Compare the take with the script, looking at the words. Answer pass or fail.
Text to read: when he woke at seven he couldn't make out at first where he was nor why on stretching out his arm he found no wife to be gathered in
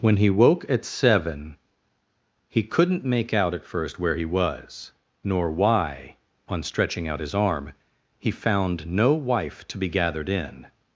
pass